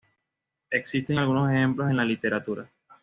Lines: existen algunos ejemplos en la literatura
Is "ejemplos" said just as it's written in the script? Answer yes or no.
yes